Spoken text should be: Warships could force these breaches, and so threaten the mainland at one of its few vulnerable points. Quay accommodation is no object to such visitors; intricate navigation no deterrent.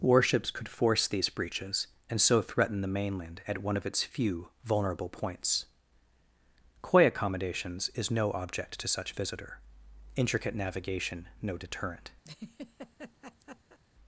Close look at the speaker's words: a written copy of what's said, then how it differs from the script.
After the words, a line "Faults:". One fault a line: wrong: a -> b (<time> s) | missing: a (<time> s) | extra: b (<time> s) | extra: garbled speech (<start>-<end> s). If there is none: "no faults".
Warships could force these breaches, and so threaten the mainland at one of its few vulnerable points. Quay accommodations is no object to such visitor; intricate navigation no deterrent.
Faults:
wrong: accommodation -> accommodations (7.0 s)
wrong: visitors -> visitor (9.1 s)